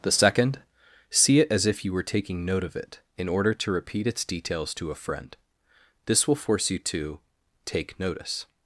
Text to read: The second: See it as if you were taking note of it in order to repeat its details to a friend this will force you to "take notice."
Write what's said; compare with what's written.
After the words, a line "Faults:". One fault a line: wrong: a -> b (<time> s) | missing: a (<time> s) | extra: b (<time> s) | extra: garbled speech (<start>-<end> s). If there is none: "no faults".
The second: See it as if you were taking note of it in order to repeat its details to a friend this will force you to "take notice."
Faults:
no faults